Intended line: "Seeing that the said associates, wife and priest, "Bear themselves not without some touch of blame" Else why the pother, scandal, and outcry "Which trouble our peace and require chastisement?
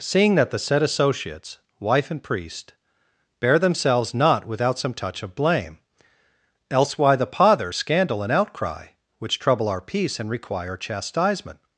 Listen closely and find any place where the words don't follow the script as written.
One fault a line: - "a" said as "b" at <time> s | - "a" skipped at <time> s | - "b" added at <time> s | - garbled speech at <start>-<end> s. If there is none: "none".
none